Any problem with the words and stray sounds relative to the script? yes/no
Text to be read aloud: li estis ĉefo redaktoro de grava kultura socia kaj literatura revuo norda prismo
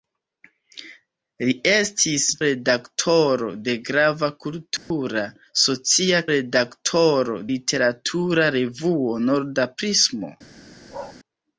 yes